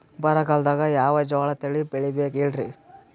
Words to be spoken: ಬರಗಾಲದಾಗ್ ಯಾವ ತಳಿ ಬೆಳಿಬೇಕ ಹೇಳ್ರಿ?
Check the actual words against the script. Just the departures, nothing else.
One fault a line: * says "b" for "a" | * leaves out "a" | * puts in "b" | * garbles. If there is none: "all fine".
* puts in "ಜೋಳ"